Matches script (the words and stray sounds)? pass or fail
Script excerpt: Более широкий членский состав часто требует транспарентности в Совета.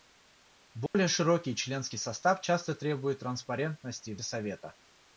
fail